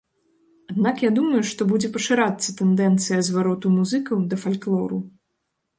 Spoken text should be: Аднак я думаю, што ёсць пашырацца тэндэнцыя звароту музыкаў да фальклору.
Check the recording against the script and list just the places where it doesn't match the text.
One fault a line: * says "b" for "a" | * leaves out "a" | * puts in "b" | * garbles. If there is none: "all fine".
* says "будзе" for "ёсць"